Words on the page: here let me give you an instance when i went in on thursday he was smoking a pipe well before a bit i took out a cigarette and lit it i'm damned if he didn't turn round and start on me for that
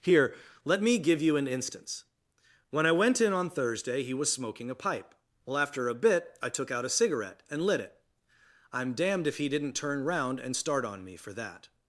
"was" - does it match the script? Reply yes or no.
yes